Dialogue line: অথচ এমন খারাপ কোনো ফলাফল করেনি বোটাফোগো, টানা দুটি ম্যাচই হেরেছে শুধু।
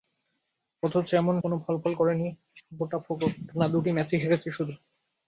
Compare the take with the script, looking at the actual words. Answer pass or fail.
fail